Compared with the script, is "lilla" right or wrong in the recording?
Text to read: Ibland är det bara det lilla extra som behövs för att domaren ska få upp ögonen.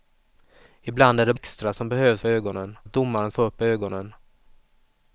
wrong